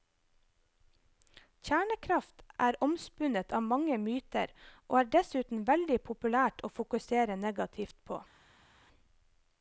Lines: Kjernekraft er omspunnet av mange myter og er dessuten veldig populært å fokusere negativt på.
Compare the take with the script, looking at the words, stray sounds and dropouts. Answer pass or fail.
pass